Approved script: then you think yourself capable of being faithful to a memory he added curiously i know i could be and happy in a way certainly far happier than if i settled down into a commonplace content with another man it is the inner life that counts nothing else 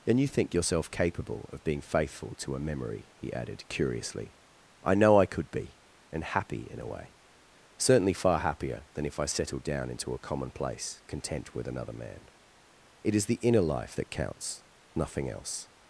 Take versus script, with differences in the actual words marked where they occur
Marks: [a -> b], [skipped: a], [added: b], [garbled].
then you think yourself capable of being faithful to a memory he added curiously i know i could be and happy in a way certainly far happier than if i settled down into a commonplace content with another man it is the inner life that counts nothing else